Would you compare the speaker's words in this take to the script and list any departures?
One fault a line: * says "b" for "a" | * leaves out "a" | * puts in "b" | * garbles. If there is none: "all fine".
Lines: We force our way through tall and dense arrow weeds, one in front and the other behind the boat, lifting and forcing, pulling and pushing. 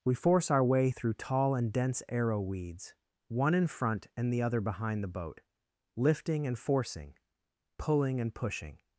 all fine